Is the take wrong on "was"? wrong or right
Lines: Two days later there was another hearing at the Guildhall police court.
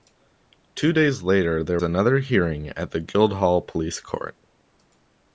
wrong